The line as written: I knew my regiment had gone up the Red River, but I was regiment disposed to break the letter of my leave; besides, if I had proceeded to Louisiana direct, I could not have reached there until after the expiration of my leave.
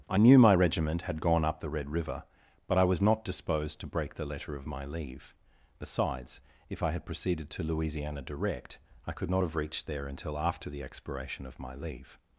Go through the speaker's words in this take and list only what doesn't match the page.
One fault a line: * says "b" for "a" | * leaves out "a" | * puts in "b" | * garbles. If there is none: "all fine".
* says "not" for "regiment"